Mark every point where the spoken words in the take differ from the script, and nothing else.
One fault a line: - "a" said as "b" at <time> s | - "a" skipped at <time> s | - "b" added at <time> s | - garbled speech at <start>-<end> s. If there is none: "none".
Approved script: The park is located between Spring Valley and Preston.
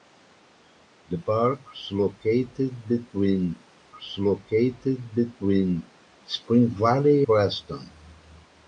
- "is located between" added at 4.0 s
- "and" skipped at 7.2 s